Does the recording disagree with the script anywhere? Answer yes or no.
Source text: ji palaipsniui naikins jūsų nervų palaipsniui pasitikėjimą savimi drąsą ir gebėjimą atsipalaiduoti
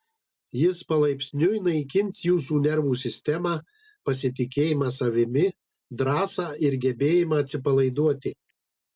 yes